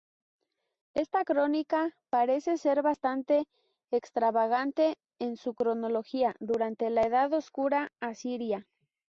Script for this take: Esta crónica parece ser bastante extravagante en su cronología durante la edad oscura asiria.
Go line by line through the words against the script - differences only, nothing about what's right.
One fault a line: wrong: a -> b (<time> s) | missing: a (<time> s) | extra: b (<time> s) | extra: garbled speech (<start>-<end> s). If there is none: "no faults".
no faults